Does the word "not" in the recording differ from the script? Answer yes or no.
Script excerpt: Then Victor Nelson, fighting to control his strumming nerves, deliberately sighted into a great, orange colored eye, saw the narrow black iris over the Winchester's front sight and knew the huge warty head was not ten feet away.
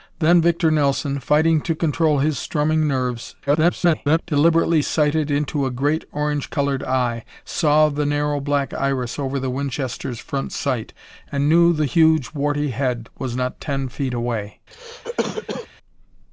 no